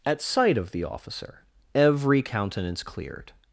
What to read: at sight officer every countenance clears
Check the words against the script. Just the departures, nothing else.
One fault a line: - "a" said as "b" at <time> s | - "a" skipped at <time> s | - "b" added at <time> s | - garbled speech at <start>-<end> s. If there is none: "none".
- "of the" added at 0.6 s
- "clears" said as "cleared" at 2.8 s